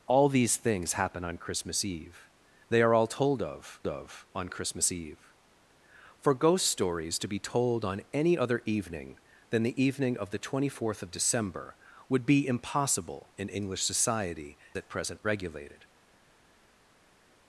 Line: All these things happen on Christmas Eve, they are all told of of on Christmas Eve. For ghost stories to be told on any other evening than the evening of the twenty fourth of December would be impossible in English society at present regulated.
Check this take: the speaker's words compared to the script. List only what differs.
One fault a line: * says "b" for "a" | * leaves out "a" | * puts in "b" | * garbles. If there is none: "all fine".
all fine